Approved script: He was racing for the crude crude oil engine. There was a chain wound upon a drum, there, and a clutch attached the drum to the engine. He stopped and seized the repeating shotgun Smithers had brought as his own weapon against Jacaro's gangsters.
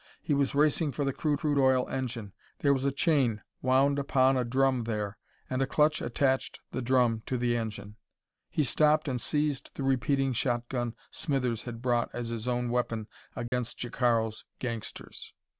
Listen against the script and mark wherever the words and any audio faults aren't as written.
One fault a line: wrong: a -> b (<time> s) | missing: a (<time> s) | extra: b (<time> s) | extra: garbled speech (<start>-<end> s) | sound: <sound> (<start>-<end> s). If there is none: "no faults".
sound: dropout (13.5-13.5 s)